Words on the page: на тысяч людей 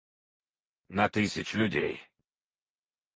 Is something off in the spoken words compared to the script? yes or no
no